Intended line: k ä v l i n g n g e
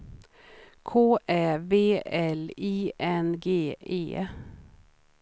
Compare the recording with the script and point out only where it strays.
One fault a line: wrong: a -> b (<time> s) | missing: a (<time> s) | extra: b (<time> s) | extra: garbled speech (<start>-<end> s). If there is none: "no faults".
missing: n g (3.7 s)